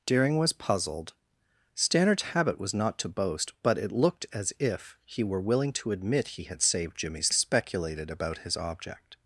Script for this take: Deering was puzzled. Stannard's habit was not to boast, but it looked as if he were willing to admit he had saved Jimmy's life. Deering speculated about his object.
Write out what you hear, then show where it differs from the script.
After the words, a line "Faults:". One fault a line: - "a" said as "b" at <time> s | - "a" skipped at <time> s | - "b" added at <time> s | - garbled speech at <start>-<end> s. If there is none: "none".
Deering was puzzled. Stannard's habit was not to boast, but it looked as if he were willing to admit he had saved Jimmy's speculated about his object.
Faults:
- "life Deering" skipped at 7.3 s